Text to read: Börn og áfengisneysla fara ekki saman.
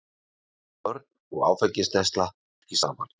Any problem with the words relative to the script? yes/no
yes